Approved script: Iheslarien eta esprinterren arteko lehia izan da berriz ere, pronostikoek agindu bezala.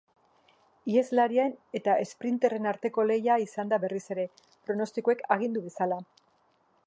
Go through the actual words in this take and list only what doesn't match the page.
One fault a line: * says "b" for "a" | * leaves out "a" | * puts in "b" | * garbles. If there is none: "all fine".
all fine